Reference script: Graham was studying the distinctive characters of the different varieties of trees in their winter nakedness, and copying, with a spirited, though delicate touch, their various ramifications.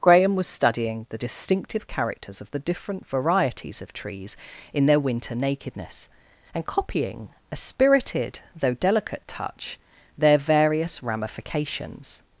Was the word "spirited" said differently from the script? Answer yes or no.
no